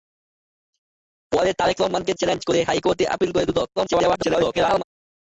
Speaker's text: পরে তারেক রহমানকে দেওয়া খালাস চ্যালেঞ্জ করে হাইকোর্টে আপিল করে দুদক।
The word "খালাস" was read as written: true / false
false